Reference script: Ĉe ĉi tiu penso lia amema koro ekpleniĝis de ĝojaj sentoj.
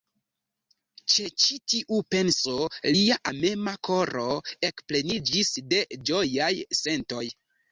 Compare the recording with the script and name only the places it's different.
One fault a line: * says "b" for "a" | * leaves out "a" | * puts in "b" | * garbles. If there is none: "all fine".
all fine